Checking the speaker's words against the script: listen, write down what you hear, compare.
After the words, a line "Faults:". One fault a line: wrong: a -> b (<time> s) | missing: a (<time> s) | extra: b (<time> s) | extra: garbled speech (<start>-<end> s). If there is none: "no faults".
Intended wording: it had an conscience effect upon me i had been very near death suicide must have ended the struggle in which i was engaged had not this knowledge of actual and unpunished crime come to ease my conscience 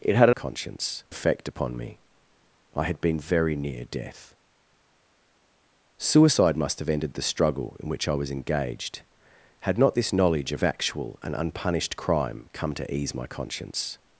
it had an conscience effect upon me i had been very near death suicide must have ended the struggle in which i was engaged had not this knowledge of actual and unpunished crime come to ease my conscience
Faults:
no faults